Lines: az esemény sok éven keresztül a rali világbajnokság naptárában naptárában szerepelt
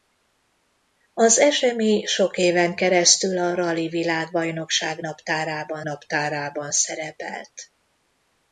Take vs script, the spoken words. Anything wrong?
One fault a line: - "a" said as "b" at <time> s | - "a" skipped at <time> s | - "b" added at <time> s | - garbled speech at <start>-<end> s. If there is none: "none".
none